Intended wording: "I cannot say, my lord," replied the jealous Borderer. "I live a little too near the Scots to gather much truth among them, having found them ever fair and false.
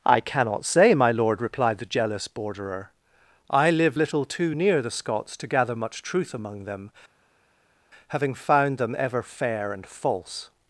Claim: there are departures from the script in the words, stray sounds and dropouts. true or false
true